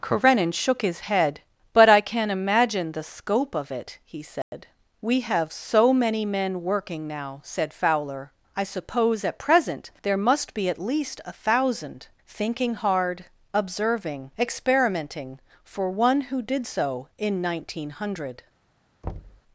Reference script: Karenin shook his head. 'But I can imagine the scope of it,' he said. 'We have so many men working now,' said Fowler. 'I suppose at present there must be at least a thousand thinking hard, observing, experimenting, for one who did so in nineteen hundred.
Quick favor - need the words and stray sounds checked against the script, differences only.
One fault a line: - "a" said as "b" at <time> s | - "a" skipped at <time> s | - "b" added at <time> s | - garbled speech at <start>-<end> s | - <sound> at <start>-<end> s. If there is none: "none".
- dropout at 4.4-4.5 s
- thud at 19.0-19.4 s